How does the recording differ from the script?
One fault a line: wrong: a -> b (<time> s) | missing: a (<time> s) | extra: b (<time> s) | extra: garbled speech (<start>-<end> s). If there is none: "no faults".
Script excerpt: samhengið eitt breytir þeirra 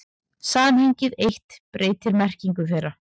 extra: merkingu (2.2 s)